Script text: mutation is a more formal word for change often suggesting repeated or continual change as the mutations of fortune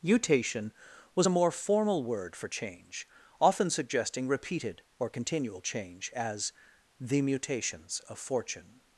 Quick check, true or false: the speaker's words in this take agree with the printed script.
false